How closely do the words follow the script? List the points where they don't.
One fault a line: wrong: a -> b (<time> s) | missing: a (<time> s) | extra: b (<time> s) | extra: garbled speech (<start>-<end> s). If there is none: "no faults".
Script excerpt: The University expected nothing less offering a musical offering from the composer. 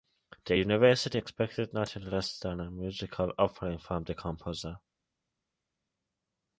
wrong: offering -> than (2.4 s)